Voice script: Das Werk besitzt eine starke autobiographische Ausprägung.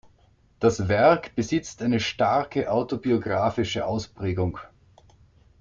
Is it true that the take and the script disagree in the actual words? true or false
false